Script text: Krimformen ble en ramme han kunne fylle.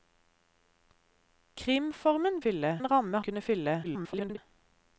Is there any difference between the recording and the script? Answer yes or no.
yes